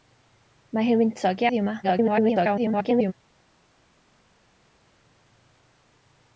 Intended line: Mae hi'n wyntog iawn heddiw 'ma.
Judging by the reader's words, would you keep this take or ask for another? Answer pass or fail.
fail